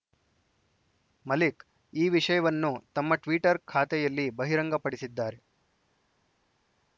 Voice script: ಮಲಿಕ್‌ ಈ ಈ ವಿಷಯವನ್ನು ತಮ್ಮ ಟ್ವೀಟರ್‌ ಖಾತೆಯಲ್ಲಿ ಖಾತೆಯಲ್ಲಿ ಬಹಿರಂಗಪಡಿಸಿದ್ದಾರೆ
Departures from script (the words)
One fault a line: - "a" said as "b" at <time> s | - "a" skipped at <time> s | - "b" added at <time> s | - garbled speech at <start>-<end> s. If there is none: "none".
- "ಈ" skipped at 2.1 s
- "ಖಾತೆಯಲ್ಲಿ" skipped at 4.3 s